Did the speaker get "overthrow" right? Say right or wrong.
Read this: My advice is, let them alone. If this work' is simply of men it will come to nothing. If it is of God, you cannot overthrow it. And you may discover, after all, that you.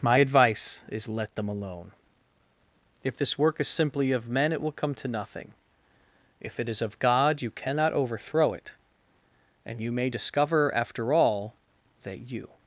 right